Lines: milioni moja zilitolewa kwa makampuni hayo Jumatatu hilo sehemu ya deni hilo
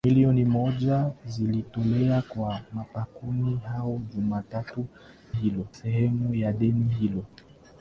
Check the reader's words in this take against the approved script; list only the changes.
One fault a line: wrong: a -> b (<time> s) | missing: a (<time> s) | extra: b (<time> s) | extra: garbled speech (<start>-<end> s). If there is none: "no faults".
no faults